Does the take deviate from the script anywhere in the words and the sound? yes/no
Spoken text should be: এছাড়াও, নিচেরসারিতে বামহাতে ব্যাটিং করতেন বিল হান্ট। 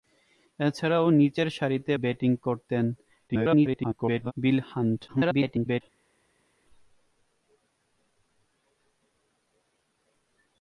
yes